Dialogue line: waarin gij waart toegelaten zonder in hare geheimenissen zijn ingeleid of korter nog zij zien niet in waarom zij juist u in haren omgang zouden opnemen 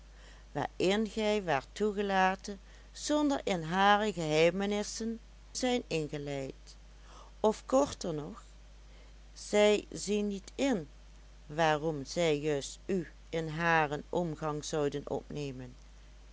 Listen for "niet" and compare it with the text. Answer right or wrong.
right